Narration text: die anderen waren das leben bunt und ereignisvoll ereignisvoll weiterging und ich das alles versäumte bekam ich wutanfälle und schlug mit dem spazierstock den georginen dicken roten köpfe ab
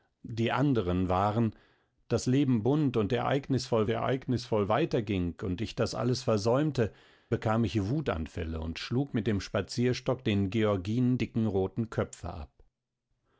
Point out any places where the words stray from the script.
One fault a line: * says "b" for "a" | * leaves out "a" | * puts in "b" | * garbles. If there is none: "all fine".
all fine